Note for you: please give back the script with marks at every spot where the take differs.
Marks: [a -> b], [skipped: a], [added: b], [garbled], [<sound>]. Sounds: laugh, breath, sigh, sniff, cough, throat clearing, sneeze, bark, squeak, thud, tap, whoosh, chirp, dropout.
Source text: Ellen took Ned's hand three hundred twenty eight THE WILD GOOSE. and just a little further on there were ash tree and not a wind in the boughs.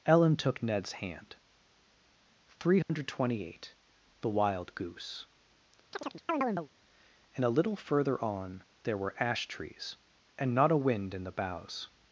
Ellen took Ned's hand three hundred [dropout] twenty eight THE WILD GOOSE. [chirp] and [skipped: just] a little further on there were ash [tree -> trees] and not a wind in the boughs.